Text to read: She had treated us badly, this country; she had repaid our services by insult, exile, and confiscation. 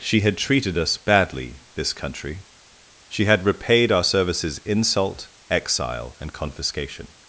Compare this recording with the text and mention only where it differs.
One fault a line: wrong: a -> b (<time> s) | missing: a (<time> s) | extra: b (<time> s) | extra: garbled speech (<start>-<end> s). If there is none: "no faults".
missing: by (4.6 s)